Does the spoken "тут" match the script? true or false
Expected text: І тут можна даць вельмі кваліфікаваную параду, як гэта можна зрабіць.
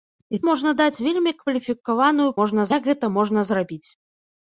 false